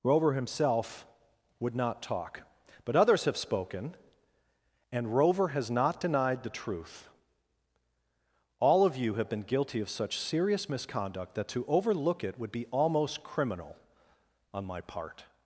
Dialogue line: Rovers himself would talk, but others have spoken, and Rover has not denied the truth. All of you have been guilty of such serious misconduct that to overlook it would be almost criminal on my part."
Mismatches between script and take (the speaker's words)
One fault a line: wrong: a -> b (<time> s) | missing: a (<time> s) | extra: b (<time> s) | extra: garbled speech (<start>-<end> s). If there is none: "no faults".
wrong: Rovers -> Rover (0.0 s)
extra: not (1.8 s)